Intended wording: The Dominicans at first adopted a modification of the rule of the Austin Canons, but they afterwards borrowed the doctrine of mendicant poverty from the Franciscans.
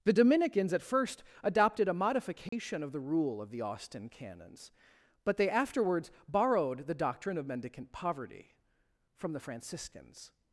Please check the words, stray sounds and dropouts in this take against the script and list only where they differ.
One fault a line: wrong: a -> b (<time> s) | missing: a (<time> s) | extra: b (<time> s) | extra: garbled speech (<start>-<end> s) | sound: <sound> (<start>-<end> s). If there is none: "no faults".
sound: dropout (2.5-2.5 s)